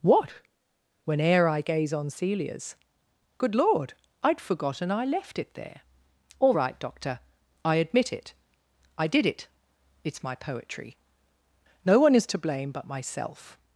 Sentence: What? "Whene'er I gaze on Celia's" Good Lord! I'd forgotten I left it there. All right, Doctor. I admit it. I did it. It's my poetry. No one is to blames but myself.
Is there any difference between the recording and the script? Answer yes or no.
yes